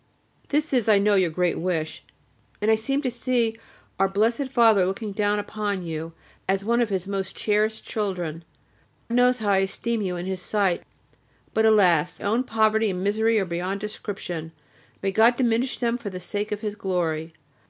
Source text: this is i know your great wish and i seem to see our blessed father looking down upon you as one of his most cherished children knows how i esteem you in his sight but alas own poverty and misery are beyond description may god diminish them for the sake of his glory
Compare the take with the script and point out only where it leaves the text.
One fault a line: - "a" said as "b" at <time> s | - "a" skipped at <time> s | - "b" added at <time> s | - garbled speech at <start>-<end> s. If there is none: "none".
none